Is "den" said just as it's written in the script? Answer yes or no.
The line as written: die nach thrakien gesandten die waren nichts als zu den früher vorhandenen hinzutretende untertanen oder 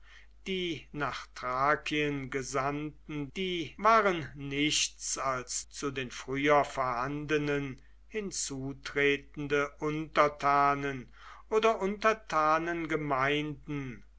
yes